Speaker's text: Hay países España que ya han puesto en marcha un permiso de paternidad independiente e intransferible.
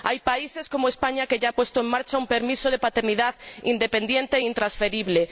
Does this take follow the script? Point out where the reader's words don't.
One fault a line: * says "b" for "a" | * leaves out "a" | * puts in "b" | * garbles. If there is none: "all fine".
* puts in "como"